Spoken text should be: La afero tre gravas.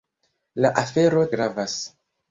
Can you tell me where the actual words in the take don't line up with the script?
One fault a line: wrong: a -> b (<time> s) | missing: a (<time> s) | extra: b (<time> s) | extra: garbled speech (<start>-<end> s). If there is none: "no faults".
missing: tre (1.3 s)